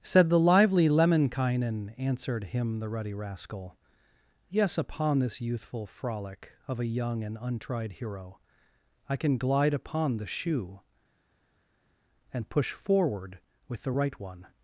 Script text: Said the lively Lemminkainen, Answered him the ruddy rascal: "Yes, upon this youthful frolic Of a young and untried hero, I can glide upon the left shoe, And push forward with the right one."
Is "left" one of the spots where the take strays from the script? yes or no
yes